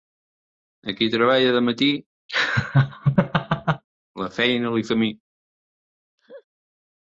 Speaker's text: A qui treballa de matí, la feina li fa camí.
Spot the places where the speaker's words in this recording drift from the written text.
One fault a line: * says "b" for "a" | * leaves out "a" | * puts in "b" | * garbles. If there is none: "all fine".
* leaves out "fa"